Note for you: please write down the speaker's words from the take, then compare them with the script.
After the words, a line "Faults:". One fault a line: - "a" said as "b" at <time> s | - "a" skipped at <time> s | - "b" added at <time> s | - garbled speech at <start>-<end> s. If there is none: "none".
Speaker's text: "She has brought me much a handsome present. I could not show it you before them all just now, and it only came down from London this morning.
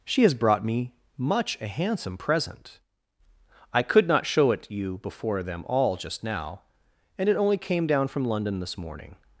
"She has brought me much a handsome present. I could not show it you before them all just now, and it only came down from London this morning.
Faults:
none